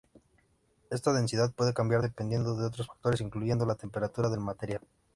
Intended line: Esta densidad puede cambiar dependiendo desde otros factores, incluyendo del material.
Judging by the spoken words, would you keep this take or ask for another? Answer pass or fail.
fail